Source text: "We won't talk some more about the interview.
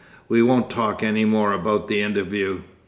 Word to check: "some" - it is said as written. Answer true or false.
false